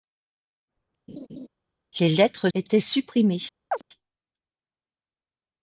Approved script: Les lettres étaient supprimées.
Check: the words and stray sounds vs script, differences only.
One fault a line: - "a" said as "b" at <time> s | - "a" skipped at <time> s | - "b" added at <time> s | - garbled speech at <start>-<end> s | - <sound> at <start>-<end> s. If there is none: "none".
- laugh at 1.1-1.5 s
- chirp at 3.7-3.8 s